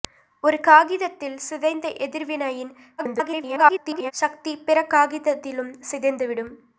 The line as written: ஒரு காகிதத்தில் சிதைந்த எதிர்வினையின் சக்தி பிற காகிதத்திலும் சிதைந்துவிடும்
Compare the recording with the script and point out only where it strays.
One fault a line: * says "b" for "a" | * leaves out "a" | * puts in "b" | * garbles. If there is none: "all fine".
* garbles